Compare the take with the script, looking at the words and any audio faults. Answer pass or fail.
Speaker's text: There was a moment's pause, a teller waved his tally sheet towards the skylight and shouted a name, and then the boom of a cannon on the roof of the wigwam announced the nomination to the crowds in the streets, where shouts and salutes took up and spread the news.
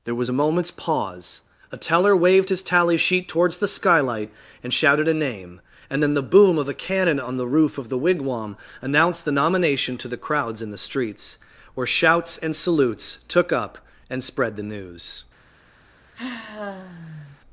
fail